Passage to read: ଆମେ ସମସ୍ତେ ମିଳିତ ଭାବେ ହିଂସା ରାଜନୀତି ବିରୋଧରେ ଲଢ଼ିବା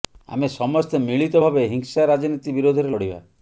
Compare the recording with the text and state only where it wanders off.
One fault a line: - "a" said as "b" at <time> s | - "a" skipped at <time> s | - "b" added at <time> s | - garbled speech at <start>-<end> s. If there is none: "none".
none